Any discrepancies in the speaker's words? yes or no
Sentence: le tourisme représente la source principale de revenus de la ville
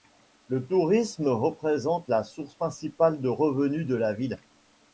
no